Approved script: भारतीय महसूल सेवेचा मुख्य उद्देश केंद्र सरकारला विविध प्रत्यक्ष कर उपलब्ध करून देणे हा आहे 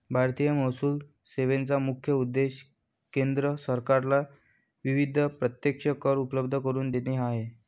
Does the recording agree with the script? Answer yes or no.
yes